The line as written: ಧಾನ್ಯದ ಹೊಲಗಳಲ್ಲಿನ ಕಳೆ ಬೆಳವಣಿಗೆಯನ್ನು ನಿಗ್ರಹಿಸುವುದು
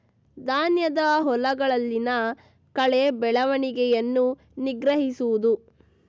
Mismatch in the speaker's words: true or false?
false